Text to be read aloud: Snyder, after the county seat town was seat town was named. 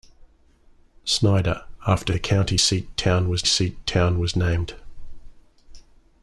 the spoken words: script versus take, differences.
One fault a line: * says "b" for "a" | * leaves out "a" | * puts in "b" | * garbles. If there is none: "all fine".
all fine